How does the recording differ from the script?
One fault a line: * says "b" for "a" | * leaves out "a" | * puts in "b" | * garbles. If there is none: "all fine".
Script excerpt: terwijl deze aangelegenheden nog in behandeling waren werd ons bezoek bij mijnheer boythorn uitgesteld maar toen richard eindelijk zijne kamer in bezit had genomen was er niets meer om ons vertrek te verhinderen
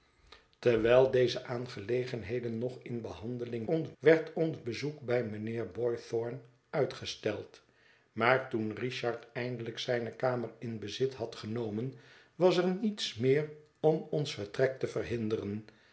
* says "ons" for "waren"